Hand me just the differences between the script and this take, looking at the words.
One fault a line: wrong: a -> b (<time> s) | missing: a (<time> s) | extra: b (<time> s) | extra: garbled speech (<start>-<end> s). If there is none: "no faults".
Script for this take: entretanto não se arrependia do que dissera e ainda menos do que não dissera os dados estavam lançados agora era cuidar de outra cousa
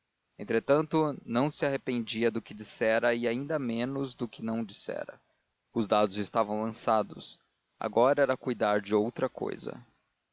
no faults